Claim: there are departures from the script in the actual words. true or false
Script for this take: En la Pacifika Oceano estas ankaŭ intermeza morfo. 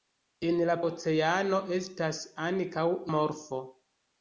true